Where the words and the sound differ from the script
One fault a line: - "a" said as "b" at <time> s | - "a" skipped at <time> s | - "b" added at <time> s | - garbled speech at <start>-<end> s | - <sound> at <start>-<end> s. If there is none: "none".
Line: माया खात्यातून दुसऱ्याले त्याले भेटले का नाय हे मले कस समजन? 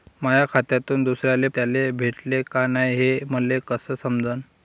none